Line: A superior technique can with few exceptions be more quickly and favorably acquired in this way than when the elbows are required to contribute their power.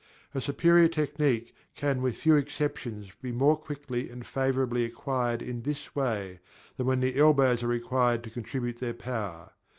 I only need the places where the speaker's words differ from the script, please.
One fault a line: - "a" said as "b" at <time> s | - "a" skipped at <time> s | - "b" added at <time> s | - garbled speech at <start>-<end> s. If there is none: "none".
none